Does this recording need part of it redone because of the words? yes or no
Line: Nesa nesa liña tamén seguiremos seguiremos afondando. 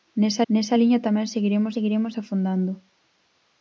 no